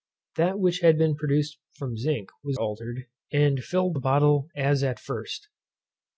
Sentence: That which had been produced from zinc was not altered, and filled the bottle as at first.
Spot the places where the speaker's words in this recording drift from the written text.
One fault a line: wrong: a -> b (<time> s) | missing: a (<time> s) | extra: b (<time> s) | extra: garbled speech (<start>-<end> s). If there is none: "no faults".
missing: not (2.6 s)